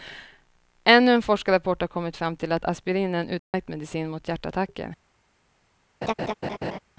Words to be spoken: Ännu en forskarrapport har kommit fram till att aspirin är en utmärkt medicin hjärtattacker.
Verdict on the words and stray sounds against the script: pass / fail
fail